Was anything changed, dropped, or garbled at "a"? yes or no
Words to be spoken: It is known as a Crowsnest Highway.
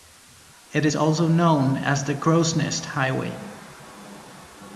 yes